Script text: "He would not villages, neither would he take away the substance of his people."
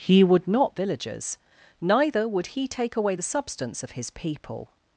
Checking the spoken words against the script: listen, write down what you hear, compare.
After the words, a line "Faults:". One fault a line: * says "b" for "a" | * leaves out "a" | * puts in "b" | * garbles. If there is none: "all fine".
"He would not villages, neither would he take away the substance of his people."
Faults:
all fine